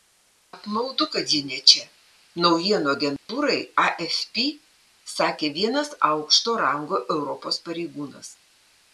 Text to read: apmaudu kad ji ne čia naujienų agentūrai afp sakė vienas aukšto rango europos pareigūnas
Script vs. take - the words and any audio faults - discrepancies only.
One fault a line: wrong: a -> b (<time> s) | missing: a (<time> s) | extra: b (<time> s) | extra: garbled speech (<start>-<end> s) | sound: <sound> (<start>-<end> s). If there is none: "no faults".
sound: dropout (3.2-3.3 s)